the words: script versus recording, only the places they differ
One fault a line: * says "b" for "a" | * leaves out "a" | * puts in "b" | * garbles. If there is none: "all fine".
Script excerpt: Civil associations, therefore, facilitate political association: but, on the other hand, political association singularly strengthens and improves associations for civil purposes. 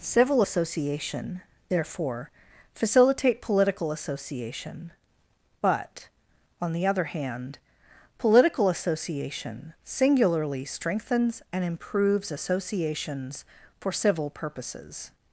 * says "association" for "associations"